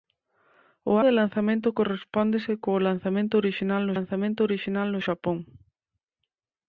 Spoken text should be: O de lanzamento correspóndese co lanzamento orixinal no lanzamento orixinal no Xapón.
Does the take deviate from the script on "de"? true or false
false